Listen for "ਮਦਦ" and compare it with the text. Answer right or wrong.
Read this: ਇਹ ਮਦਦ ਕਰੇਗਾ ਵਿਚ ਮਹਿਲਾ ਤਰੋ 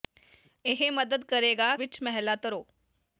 right